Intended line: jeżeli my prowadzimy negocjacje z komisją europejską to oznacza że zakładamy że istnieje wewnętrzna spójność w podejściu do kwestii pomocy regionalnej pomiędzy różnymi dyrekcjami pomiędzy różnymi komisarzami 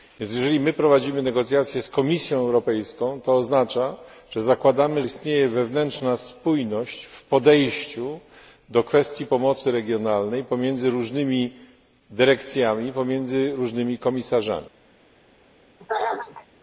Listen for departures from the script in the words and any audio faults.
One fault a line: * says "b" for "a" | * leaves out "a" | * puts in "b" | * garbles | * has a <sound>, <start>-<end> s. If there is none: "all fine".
* leaves out "że"
* has a throat clearing, 15.8-16.5 s